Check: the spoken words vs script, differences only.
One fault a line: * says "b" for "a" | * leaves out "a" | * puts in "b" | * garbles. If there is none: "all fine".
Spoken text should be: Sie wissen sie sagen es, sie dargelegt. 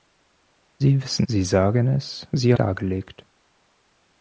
all fine